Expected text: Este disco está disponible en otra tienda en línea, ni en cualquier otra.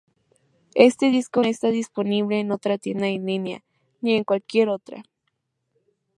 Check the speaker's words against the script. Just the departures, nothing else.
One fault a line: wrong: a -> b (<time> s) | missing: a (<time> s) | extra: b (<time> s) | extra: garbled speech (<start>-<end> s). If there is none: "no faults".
no faults